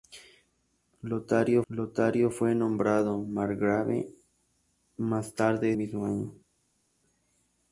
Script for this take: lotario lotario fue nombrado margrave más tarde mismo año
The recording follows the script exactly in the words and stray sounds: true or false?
true